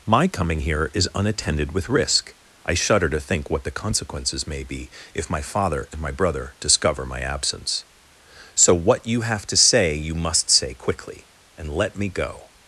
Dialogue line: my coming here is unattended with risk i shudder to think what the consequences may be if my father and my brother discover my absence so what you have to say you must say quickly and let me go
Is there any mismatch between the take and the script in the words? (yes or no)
no